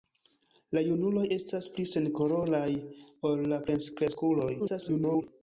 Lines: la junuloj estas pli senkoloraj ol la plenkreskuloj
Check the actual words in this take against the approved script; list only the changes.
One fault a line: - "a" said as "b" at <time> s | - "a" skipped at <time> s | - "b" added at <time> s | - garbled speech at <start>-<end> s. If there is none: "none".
- garbled speech at 4.6-5.2 s